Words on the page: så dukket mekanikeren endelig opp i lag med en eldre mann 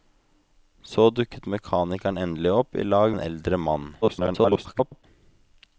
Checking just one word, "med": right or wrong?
wrong